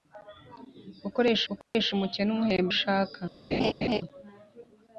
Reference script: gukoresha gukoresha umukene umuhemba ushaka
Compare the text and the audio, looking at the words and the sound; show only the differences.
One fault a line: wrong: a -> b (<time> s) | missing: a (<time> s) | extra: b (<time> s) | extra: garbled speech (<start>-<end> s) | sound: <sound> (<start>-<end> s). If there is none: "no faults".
sound: dropout (1.6-1.7 s)
sound: laugh (3.5-4.0 s)